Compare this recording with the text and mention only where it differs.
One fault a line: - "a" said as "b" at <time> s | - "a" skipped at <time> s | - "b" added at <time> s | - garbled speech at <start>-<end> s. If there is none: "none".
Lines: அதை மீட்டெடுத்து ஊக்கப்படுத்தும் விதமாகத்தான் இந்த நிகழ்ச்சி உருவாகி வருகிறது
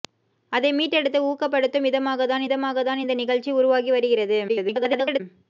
- "விதமாகத்தான்" added at 2.4 s
- garbled speech at 4.5-5.2 s